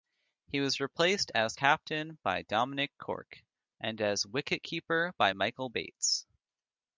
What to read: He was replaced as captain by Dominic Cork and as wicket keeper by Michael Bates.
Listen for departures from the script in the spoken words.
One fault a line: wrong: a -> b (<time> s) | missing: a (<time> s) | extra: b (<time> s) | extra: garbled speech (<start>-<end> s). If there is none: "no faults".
no faults